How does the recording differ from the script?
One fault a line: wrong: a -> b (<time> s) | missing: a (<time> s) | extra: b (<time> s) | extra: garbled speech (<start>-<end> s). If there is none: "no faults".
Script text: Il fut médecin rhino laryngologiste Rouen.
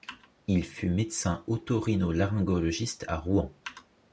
extra: oto (1.4 s)
extra: à (3.0 s)